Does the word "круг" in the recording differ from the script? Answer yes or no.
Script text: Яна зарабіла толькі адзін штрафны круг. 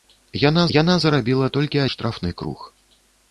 no